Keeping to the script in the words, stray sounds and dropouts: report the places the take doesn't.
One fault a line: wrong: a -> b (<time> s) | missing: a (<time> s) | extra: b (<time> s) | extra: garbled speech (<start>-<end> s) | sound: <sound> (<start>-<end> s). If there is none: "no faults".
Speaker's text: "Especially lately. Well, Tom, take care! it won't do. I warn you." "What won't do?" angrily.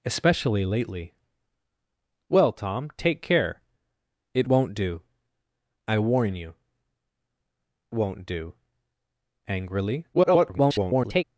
missing: What (6.5 s)
extra: garbled speech (10.1-11.2 s)